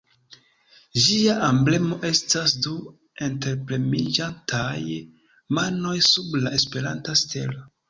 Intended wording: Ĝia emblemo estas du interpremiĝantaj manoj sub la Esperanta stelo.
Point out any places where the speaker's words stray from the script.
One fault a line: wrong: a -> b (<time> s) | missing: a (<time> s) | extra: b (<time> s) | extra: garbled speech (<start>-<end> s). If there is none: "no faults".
no faults